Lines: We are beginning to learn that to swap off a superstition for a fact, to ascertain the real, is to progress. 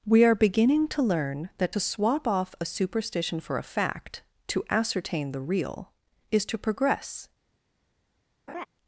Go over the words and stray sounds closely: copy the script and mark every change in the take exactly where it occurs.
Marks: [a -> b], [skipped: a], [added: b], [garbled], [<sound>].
We are beginning to learn that to swap off a superstition for a fact, to ascertain the real, is to progress. [laugh]